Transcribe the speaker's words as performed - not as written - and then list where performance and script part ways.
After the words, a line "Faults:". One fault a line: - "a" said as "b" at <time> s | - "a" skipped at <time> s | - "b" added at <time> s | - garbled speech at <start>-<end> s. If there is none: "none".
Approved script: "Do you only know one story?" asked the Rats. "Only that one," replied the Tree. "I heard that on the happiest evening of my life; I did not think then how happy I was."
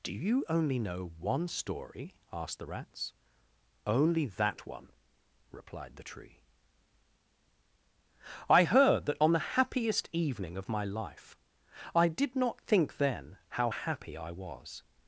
"Do you only know one story?" asked the Rats. "Only that one," replied the Tree. "I heard that on the happiest evening of my life; I did not think then how happy I was."
Faults:
none